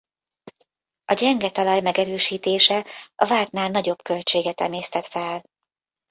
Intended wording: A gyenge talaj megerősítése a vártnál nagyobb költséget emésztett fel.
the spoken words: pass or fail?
pass